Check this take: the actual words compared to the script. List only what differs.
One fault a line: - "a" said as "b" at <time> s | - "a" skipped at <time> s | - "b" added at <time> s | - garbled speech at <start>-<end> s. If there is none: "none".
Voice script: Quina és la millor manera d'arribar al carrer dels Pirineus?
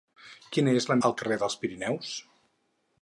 - "millor manera d'arribar" skipped at 0.9 s